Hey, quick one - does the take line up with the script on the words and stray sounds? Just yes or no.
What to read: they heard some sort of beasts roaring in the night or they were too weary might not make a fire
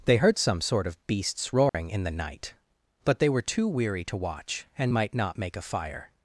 no